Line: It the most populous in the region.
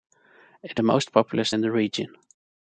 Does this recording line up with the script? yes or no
yes